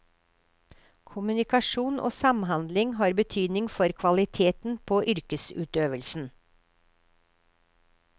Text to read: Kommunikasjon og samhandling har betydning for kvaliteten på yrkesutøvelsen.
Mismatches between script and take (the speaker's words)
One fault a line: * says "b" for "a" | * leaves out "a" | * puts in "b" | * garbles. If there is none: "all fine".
all fine